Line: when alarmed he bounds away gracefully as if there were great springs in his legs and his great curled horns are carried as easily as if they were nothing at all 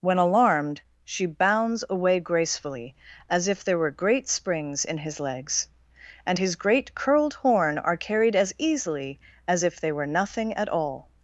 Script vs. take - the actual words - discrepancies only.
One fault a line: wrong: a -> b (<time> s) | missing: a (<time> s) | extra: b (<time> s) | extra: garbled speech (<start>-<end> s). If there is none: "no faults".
wrong: he -> she (1.1 s)
wrong: horns -> horn (7.3 s)